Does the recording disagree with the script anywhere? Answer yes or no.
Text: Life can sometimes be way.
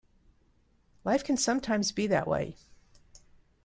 yes